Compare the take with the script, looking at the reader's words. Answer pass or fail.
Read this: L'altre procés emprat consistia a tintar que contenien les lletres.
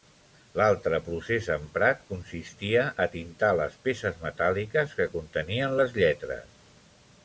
fail